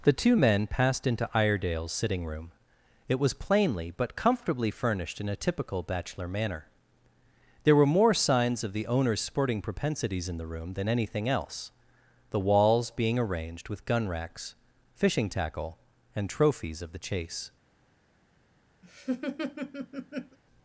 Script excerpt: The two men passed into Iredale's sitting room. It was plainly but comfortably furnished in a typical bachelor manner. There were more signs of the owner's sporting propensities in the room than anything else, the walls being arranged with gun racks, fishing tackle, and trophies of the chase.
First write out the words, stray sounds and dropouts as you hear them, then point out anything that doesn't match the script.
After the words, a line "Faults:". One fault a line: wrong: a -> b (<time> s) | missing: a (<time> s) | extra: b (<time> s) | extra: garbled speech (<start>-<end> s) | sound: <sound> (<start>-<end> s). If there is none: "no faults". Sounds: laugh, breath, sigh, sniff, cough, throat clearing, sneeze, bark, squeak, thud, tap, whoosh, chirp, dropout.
The two men passed into Iredale's sitting room. It was plainly but comfortably furnished in a typical bachelor manner. There were more signs of the owner's sporting propensities in the room than anything else, the walls being arranged with gun racks, fishing tackle, and trophies of the chase.
Faults:
sound: laugh (18.8-20.4 s)